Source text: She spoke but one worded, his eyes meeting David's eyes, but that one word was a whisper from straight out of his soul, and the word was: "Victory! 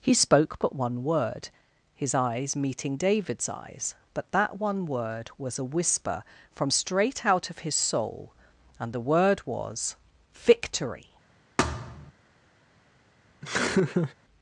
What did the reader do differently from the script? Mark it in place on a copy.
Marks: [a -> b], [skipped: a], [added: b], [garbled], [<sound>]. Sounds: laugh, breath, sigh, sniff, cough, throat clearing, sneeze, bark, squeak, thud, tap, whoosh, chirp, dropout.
[She -> He] spoke but one [worded, -> word] his eyes meeting David's eyes, but that one word was a whisper from straight out of his soul, and the word was: "Victory! [thud] [laugh]